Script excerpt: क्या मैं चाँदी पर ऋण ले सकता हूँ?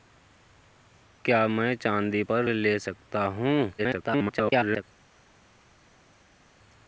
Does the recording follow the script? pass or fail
fail